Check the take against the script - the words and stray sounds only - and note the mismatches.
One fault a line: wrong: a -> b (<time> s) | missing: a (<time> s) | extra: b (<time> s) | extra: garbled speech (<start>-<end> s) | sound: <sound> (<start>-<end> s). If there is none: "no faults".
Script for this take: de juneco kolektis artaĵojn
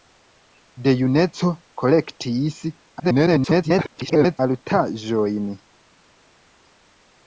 extra: garbled speech (3.0-4.4 s)